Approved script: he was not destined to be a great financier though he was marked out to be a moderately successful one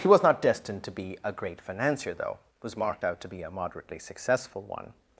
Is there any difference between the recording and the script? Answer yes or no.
yes